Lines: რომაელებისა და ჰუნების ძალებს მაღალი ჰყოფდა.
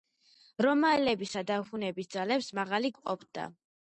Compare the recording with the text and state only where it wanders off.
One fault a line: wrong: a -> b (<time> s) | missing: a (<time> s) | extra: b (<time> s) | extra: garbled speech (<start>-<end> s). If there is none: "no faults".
no faults